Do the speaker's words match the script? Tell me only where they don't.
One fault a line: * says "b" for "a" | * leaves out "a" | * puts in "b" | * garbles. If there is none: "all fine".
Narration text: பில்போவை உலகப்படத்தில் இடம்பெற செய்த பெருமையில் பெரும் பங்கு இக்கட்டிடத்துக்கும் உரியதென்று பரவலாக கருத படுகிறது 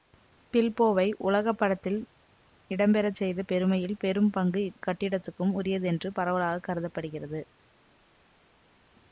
all fine